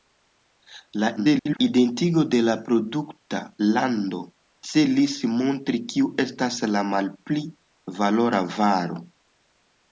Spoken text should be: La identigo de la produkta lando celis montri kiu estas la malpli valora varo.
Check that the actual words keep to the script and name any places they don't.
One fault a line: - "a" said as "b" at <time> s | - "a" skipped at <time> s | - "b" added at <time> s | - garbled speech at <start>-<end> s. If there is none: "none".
- garbled speech at 1.2-1.6 s